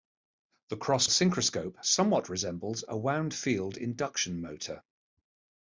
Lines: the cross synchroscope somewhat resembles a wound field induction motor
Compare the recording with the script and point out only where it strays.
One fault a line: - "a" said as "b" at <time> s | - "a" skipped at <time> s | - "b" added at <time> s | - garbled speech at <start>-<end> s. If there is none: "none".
none